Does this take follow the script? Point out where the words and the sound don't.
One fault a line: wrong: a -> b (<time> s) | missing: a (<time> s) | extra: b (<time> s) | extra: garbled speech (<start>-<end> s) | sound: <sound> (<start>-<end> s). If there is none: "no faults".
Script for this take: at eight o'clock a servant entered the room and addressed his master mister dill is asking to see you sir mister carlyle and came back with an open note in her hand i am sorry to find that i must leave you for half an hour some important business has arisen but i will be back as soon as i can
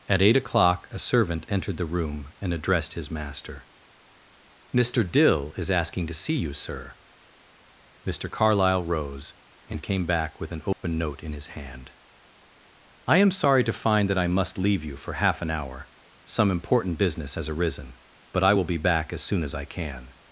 extra: rose (8.8 s)
sound: dropout (10.7-10.8 s)
wrong: her -> his (11.3 s)